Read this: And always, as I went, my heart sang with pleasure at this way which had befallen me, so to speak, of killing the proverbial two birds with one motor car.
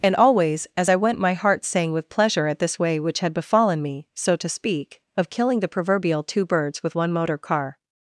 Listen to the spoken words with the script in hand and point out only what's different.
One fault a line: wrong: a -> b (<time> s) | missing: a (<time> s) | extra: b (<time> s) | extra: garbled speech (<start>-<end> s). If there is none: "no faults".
no faults